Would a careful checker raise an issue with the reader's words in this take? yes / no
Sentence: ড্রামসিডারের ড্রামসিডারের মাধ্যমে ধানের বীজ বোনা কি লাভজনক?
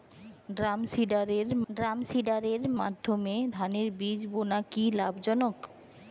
no